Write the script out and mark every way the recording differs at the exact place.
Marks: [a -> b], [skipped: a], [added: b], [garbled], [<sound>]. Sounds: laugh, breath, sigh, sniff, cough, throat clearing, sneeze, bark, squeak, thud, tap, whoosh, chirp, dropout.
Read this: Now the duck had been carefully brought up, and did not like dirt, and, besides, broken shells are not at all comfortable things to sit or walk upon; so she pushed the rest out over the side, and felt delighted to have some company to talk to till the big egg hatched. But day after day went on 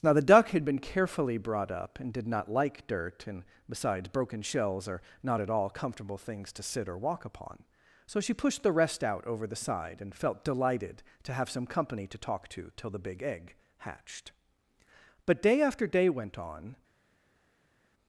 Now the duck had been carefully brought up, and did not like dirt, and, besides, broken shells are not at all comfortable things to sit or walk upon; so she pushed the rest out over the side, and felt delighted to have some company to talk to till the big egg hatched. But day after day went on